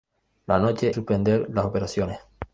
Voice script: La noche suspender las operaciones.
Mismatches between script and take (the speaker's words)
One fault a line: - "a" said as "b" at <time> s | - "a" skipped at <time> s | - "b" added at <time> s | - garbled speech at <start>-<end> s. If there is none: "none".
none